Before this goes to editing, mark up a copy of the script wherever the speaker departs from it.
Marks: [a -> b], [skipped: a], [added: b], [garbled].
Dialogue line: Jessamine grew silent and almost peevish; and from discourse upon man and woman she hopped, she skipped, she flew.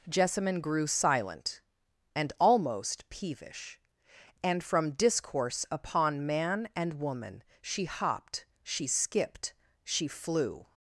Jessamine grew silent and almost peevish; and from discourse upon man and woman she hopped, she skipped, she flew.